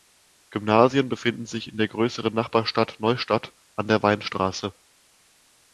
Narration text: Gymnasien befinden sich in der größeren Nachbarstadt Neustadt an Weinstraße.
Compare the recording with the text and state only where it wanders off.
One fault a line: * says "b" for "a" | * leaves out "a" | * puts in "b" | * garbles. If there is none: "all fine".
* puts in "der"